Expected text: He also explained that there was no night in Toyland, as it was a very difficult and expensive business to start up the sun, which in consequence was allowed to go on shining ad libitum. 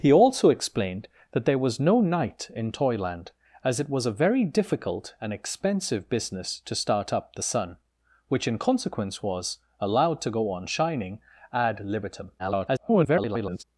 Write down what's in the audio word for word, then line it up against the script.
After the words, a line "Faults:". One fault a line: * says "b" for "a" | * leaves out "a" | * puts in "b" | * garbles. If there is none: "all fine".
He also explained that there was no night in Toyland, as it was a very difficult and expensive business to start up the sun, which in consequence was allowed to go on shining ad libitum. [garbled]
Faults:
* garbles